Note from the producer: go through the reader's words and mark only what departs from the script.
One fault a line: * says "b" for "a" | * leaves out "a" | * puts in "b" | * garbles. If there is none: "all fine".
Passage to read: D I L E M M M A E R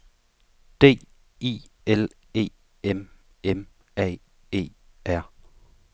* leaves out "M"